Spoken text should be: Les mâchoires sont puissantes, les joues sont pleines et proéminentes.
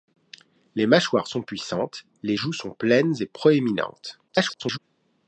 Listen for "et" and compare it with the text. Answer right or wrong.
right